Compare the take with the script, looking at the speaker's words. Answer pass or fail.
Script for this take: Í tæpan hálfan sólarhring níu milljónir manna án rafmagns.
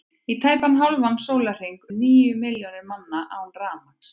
pass